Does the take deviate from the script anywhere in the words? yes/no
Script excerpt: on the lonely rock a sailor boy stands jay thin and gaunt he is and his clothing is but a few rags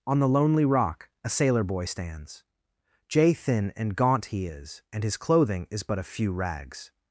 no